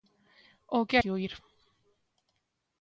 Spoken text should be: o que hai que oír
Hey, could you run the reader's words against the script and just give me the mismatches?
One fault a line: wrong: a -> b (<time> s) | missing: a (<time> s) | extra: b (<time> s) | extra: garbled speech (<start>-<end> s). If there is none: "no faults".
missing: hai (1.0 s)